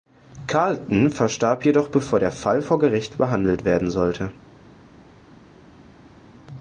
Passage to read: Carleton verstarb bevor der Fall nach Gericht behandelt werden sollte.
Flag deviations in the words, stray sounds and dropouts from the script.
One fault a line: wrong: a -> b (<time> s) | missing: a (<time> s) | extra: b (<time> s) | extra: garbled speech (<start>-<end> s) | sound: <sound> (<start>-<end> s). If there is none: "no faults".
extra: jedoch (1.6 s)
wrong: nach -> vor (2.6 s)